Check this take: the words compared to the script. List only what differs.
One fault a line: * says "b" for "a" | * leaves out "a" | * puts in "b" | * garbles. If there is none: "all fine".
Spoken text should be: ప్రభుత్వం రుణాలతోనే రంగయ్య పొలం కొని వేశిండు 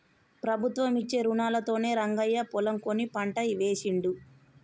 * puts in "ఇచ్చే"
* puts in "పంట"